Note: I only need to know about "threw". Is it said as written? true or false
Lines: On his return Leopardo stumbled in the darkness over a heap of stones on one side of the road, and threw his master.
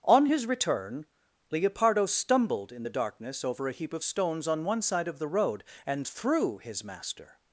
true